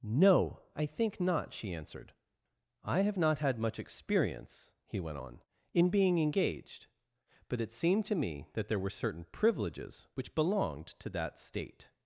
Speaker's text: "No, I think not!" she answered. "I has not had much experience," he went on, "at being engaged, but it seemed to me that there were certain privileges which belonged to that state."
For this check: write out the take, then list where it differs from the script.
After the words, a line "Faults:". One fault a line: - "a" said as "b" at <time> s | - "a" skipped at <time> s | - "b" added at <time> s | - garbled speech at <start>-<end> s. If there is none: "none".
"No, I think not!" she answered. "I have not had much experience," he went on, "in being engaged, but it seemed to me that there were certain privileges which belonged to that state."
Faults:
- "has" said as "have" at 3.0 s
- "at" said as "in" at 5.7 s